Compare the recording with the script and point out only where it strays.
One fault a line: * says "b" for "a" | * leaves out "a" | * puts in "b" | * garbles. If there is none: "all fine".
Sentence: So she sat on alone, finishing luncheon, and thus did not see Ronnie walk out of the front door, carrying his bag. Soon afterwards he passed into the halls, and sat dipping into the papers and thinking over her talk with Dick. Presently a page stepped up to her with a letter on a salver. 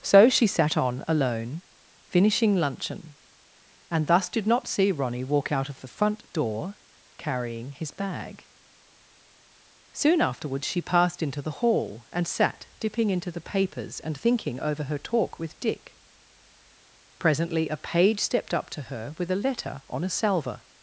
* says "she" for "he"
* says "hall" for "halls"